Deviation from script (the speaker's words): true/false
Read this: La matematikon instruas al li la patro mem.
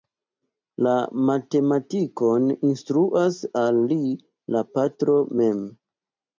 false